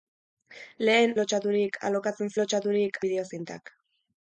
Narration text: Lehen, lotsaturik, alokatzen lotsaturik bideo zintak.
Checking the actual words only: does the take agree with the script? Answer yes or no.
yes